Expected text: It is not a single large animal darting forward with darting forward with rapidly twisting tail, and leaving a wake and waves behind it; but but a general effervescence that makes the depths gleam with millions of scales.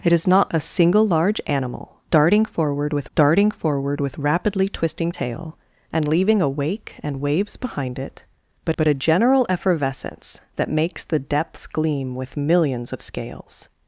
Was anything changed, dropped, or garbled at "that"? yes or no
no